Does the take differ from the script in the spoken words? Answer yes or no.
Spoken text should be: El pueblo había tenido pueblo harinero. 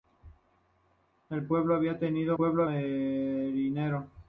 no